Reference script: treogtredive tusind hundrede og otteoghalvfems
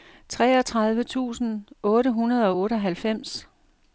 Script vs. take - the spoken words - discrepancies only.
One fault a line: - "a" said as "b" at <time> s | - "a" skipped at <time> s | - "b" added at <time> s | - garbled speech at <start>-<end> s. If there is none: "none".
- "otte" added at 1.8 s